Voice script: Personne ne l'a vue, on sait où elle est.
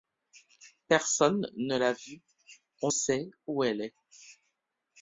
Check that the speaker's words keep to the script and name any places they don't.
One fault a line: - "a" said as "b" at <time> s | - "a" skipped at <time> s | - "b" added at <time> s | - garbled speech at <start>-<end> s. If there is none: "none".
none